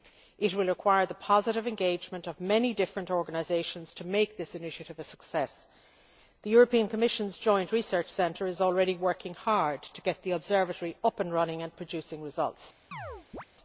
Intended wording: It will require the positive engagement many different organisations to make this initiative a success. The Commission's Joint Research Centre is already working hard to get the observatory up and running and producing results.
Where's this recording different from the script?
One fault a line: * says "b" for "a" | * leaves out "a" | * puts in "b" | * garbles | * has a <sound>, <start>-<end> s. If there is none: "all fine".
* puts in "of"
* has a chirp, 12.9-13.5 s